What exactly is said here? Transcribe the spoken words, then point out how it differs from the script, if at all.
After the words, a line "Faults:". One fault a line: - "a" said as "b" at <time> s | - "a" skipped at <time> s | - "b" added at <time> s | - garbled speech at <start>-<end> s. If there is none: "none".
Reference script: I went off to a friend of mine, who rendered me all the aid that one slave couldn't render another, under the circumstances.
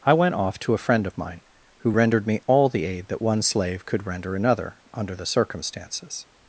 I went off to a friend of mine, who rendered me all the aid that one slave could render another, under the circumstances.
Faults:
- "couldn't" said as "could" at 3.9 s